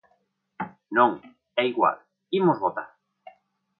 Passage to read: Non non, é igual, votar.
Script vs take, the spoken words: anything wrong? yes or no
yes